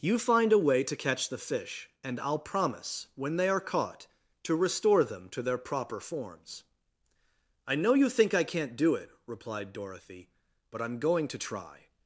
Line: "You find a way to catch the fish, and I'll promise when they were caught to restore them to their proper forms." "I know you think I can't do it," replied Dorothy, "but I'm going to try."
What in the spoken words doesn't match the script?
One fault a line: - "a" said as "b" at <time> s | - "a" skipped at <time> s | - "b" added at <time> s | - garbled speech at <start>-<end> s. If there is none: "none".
- "were" said as "are" at 3.5 s